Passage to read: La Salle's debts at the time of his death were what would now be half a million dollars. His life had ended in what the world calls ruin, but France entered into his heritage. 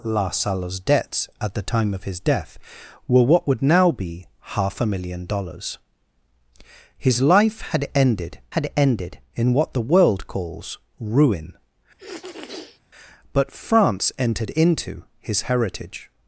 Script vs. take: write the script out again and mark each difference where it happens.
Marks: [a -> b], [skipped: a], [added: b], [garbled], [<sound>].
La Salle's debts at the time of his death were what would now be half a million dollars. His life had ended [added: had ended] in what the world calls ruin, [sniff] but France entered into his heritage.